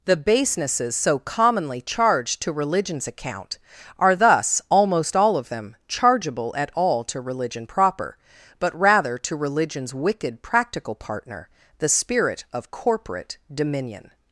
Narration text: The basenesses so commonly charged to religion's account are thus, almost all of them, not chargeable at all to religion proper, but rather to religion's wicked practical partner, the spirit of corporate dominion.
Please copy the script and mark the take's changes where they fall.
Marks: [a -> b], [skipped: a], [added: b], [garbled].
The basenesses so commonly charged to religion's account are thus, almost all of them, [skipped: not] chargeable at all to religion proper, but rather to religion's wicked practical partner, the spirit of corporate dominion.